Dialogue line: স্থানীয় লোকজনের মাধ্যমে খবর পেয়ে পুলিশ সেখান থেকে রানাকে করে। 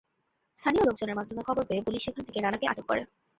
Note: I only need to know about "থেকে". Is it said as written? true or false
true